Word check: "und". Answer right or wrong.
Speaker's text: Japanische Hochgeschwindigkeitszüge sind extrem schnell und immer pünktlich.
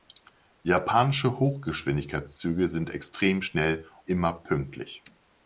wrong